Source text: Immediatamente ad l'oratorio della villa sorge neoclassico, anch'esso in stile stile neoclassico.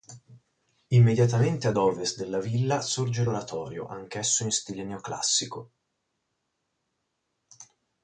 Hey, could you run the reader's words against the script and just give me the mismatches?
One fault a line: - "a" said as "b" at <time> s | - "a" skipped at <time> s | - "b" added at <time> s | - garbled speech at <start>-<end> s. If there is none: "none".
- "l'oratorio" said as "ovest" at 1.7 s
- "neoclassico" said as "l'oratorio" at 3.2 s
- "stile" skipped at 4.8 s